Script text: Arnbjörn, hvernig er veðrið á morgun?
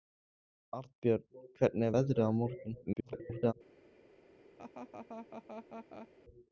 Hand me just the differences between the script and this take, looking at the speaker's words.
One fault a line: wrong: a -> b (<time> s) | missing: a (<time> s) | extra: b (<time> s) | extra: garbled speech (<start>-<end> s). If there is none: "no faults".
extra: garbled speech (2.9-3.5 s)